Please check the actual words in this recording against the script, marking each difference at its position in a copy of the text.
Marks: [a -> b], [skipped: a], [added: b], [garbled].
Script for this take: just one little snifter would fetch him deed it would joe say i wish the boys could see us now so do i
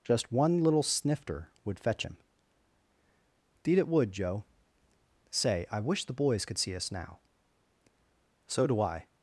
just one little snifter would fetch him deed it would joe say i wish the boys could see us now so do i